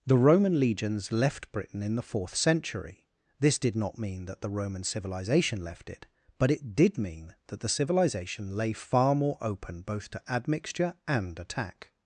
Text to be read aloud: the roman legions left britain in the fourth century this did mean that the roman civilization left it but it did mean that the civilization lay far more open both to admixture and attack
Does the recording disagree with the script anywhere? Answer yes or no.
yes